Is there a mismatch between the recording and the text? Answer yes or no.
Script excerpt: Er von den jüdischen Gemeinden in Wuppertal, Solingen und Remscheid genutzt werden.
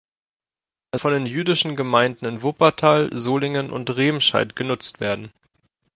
no